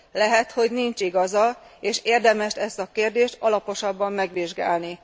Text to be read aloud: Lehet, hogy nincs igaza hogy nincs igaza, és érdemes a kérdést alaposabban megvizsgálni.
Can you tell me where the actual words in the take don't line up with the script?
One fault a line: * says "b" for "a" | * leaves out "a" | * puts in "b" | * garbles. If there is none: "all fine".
* leaves out "hogy nincs igaza"
* puts in "ezt"